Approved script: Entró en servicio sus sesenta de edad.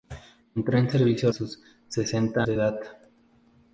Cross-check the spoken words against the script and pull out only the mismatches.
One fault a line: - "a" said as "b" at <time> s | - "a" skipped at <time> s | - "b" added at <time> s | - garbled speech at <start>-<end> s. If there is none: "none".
none